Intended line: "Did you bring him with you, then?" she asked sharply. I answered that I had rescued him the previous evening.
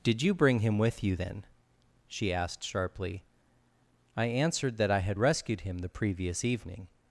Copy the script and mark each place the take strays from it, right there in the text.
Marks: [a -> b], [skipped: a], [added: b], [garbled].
"Did you bring him with you, then?" she asked sharply. I answered that I had rescued him the previous evening.